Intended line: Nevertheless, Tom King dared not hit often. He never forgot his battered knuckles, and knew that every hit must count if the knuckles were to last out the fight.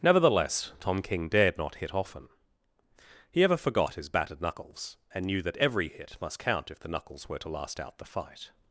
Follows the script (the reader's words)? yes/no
no